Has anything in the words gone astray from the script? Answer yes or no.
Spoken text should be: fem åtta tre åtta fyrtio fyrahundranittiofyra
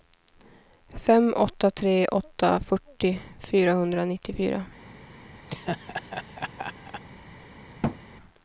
no